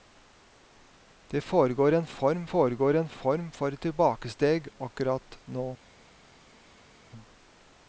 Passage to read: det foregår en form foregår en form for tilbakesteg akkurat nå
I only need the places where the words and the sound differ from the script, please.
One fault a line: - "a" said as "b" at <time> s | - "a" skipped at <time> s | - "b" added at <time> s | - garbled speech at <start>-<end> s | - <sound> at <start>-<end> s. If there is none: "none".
none